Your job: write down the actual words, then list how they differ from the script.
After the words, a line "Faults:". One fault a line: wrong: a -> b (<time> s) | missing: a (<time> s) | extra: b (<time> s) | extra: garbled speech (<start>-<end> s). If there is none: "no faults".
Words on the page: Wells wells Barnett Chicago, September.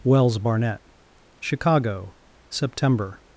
Wells Barnett Chicago, September.
Faults:
missing: wells (0.4 s)